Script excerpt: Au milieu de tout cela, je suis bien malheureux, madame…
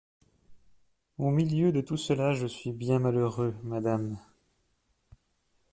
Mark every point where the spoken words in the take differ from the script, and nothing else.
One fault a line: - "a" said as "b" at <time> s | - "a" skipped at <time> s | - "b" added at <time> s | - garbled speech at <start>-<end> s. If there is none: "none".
none